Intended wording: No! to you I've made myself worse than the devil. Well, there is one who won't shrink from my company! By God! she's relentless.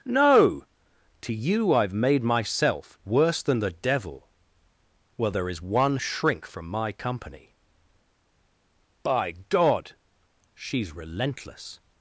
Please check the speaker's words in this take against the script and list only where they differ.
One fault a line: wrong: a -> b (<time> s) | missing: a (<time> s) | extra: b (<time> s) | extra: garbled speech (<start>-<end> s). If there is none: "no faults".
missing: who won't (6.0 s)